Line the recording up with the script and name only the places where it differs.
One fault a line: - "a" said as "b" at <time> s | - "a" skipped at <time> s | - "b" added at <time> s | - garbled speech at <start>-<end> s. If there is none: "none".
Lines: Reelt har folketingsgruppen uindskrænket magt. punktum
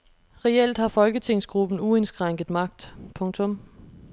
none